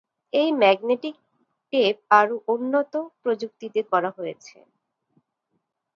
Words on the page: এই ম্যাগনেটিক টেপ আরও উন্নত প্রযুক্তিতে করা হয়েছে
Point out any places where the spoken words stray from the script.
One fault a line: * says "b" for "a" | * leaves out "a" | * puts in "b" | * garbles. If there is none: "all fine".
all fine